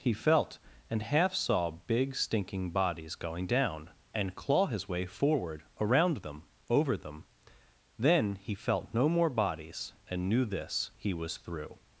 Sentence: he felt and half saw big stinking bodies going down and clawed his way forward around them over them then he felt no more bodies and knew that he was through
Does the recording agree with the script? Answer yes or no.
no